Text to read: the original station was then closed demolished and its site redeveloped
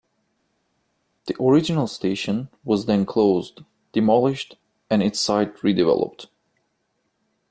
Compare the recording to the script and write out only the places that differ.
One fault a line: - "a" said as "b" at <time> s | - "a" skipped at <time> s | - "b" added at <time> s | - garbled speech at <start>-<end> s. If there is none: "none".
none